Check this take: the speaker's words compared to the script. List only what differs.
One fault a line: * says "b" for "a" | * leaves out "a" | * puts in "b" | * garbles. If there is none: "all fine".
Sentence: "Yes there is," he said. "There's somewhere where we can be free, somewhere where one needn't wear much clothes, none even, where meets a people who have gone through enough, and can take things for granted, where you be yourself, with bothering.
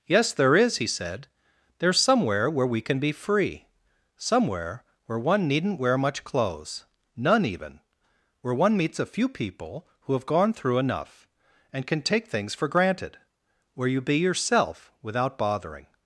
* puts in "one"
* puts in "few"
* says "without" for "with"